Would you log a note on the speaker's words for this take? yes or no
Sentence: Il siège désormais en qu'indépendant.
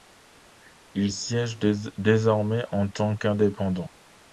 yes